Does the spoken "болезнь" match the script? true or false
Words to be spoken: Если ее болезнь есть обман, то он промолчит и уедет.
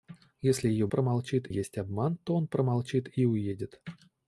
false